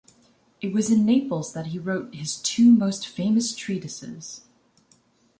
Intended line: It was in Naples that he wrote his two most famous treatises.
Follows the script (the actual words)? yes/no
yes